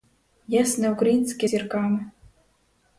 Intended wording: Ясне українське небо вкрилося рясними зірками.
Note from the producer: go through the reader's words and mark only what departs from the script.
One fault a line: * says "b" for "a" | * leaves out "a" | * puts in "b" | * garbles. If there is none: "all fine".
* leaves out "небо вкрилося рясними"